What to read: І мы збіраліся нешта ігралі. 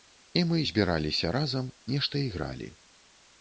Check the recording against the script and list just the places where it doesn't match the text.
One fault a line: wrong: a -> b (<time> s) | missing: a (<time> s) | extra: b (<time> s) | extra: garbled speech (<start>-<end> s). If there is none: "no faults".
extra: разам (1.3 s)